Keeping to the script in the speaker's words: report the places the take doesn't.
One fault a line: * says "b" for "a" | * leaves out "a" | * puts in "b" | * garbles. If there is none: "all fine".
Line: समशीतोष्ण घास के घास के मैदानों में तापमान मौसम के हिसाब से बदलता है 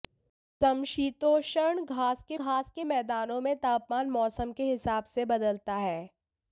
all fine